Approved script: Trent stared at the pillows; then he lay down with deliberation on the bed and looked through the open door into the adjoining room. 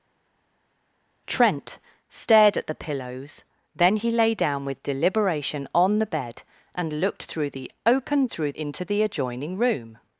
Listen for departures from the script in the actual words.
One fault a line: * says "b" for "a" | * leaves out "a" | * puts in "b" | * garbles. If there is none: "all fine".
* says "through" for "door"